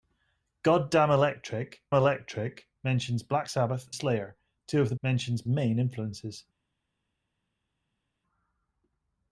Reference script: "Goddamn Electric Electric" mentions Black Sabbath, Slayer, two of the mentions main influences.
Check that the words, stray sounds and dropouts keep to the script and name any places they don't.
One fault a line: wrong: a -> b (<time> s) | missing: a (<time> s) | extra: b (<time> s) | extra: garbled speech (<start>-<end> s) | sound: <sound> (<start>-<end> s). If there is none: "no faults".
no faults